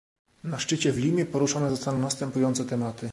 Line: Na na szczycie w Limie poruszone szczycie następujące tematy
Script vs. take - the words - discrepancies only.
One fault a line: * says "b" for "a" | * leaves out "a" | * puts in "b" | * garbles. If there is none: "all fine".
* leaves out "na"
* says "zostaną" for "szczycie"